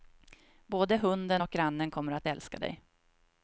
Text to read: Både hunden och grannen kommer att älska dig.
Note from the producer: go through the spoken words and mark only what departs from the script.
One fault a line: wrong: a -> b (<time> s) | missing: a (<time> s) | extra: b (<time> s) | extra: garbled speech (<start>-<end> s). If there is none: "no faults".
no faults